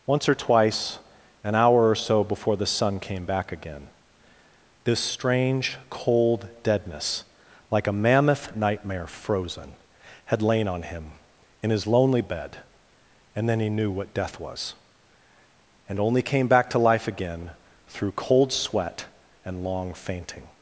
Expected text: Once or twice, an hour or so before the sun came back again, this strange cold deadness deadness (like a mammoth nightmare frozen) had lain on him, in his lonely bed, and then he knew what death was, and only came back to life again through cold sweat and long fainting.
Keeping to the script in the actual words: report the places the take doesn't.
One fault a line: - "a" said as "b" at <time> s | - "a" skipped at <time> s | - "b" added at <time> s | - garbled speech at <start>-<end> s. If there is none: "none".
- "deadness" skipped at 7.3 s